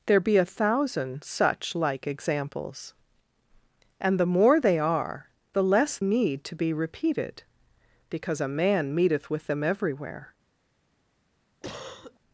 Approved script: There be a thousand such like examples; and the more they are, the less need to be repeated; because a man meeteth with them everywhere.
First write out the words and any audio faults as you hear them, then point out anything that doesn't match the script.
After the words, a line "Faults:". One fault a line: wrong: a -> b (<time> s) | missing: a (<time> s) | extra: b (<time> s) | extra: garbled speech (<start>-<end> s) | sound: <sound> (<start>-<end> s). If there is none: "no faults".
There be a thousand such like examples; and the more they are, the less need to be repeated; because a man meeteth with them everywhere.
Faults:
sound: cough (11.6-12.2 s)